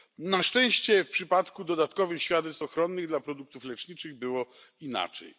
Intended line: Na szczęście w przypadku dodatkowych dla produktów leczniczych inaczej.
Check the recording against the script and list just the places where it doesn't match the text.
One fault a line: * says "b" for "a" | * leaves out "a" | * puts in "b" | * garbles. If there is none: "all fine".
* puts in "świadectw ochronnych"
* puts in "było"